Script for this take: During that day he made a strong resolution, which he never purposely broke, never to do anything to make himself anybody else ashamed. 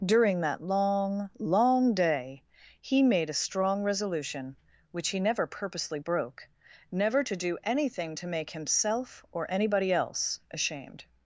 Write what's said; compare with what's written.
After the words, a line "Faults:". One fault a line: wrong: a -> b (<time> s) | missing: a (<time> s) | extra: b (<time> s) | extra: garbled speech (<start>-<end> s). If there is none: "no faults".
During that long, long day he made a strong resolution, which he never purposely broke, never to do anything to make himself or anybody else ashamed.
Faults:
extra: long long (0.6 s)
extra: or (9.3 s)